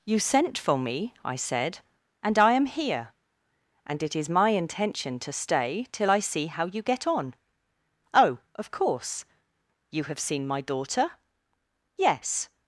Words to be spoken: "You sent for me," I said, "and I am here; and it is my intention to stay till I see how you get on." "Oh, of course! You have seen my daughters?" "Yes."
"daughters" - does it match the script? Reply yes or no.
no